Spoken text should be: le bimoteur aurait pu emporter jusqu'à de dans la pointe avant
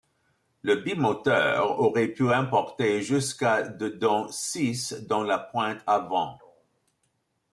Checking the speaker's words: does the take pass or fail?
fail